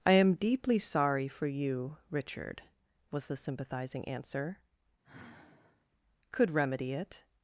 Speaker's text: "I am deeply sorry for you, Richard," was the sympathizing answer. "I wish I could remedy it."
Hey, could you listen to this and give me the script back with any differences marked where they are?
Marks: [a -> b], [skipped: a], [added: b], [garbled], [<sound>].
"I am deeply sorry for you, Richard," was the sympathizing answer. [skipped: "I wish I] [sigh] could remedy it."